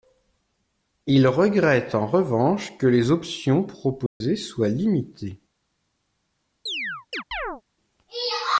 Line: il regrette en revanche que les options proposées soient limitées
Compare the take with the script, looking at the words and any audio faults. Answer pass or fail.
fail